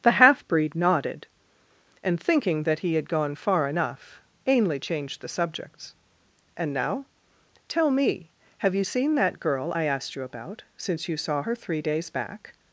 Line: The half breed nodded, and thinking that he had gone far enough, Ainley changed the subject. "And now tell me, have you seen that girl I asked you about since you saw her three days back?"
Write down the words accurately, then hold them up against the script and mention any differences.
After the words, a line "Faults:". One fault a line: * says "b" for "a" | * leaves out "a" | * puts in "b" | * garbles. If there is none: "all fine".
The half breed nodded, and thinking that he had gone far enough, Ainley changed the subjects. "And now tell me, have you seen that girl I asked you about since you saw her three days back?"
Faults:
* says "subjects" for "subject"